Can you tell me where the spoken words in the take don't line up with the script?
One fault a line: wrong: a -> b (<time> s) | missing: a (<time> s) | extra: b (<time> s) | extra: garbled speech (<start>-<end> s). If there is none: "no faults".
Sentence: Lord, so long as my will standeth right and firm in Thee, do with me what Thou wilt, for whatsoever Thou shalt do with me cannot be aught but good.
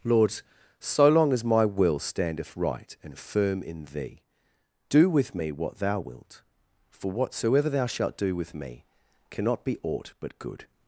no faults